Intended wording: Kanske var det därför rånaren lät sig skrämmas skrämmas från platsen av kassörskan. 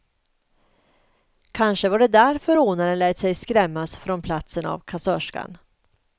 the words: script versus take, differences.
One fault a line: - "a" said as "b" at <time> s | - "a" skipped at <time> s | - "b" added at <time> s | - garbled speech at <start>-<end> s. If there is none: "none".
- "skrämmas" skipped at 4.0 s